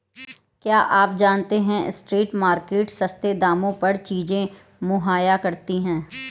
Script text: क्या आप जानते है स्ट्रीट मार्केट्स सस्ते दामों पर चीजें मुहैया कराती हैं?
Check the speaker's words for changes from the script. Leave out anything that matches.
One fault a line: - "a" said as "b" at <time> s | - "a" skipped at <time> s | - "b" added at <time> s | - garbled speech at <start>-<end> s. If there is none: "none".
none